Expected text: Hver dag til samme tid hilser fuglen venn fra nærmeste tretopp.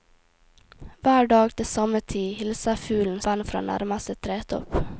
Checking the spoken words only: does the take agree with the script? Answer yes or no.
yes